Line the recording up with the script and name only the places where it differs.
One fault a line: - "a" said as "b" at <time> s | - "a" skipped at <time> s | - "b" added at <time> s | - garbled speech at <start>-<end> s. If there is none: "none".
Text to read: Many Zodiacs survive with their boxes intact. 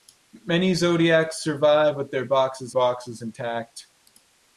- "boxes" added at 2.7 s